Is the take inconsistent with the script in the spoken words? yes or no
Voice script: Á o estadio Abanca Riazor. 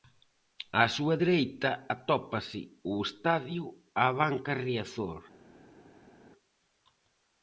yes